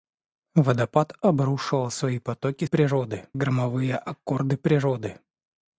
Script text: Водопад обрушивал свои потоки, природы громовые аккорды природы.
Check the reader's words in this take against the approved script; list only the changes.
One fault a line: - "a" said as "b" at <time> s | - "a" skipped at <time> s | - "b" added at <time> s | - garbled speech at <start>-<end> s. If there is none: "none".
none